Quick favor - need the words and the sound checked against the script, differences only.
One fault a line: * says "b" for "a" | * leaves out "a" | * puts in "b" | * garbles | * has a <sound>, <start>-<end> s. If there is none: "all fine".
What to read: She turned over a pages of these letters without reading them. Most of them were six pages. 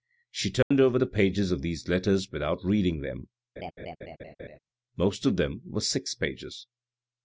* has a dropout, 0.6-0.7 s
* says "the" for "a"
* has a laugh, 3.6-4.6 s